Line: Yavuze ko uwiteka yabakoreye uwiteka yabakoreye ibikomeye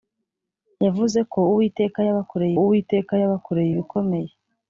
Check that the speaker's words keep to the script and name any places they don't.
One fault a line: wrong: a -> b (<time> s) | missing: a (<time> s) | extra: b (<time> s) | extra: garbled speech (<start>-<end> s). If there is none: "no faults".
no faults